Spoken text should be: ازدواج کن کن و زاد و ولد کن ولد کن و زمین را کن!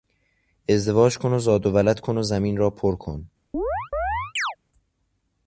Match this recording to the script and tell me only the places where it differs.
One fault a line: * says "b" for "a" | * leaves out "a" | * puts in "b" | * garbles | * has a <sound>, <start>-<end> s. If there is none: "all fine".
* leaves out "کن"
* leaves out "ولد کن"
* puts in "پر"
* has a chirp, 3.5-4.6 s